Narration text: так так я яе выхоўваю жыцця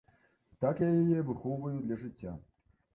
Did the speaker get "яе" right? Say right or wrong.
right